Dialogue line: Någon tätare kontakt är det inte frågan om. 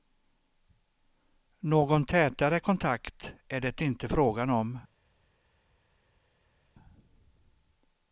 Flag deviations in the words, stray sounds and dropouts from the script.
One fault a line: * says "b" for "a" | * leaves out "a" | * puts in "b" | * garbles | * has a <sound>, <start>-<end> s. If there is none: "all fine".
all fine